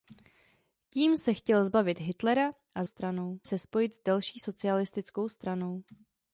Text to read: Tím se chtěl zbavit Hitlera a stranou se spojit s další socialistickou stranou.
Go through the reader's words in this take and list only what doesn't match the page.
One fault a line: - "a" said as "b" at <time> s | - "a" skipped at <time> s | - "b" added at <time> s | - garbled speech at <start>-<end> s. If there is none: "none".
none